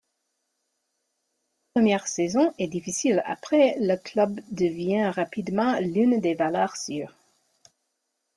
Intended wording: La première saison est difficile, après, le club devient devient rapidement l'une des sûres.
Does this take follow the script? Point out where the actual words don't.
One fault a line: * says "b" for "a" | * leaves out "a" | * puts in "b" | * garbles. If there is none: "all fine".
* leaves out "devient"
* puts in "valeurs"